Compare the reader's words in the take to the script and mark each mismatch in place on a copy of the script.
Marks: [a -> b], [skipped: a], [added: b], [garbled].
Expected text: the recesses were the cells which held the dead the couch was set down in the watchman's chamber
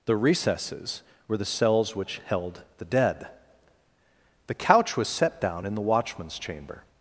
the recesses were the cells which held the dead the couch was set down in the watchman's chamber